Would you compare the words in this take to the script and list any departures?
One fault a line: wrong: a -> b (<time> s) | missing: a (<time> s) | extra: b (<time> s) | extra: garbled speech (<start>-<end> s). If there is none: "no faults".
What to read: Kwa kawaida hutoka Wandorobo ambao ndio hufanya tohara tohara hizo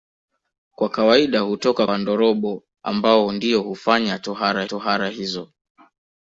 no faults